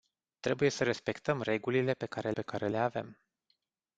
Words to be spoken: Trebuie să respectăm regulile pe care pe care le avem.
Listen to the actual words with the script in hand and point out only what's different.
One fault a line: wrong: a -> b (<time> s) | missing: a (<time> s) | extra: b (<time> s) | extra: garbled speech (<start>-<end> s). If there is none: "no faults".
no faults